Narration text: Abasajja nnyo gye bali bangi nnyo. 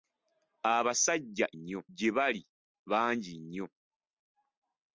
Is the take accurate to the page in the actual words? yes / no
yes